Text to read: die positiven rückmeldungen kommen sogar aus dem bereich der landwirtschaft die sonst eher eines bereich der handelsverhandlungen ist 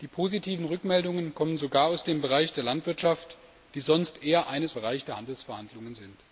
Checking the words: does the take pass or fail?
pass